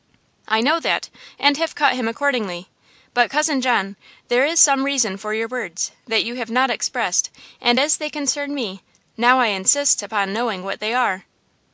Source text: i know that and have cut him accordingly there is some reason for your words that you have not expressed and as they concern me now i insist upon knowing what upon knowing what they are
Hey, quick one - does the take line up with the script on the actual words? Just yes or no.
no